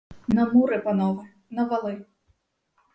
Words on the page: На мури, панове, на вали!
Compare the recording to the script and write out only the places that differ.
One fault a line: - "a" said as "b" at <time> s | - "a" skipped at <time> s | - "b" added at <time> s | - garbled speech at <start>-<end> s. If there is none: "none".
none